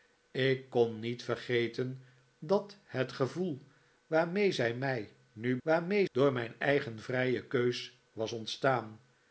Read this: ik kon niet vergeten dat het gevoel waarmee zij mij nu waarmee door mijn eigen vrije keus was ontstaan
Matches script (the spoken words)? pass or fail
pass